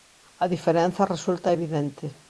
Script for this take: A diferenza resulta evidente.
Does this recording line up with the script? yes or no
yes